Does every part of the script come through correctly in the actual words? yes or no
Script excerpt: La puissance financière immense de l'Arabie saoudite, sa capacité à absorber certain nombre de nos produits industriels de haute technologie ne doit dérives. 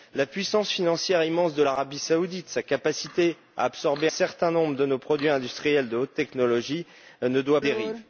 yes